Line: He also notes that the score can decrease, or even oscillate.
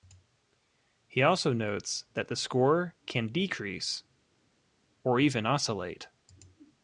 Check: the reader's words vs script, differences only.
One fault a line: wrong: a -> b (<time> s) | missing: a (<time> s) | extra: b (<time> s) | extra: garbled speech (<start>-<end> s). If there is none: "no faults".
no faults